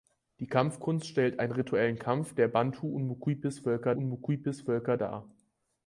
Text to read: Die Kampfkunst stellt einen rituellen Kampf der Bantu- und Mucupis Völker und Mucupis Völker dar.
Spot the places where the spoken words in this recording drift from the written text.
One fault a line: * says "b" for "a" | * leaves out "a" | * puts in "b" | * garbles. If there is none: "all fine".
all fine